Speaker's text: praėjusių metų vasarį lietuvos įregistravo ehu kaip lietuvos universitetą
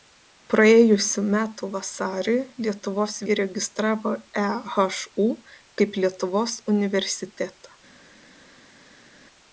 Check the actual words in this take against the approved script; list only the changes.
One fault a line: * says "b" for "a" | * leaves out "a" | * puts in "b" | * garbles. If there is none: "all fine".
all fine